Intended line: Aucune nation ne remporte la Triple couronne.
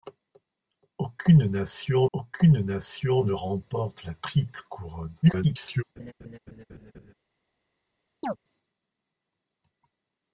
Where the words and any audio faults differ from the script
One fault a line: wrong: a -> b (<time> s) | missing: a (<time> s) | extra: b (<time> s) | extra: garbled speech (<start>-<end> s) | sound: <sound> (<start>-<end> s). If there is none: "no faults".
extra: aucune nation (2.1 s)
extra: garbled speech (5.2-5.8 s)
sound: laugh (6.0-7.1 s)
sound: chirp (8.2-8.4 s)